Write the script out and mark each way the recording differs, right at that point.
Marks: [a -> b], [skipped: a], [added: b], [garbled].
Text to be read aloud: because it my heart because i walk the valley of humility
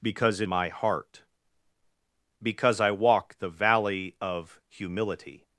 because it my heart because i walk the valley of humility